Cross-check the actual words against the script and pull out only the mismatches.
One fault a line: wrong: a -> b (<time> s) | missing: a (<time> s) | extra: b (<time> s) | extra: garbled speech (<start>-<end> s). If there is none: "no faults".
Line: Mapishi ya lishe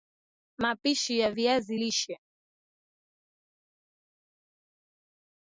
extra: viazi (1.3 s)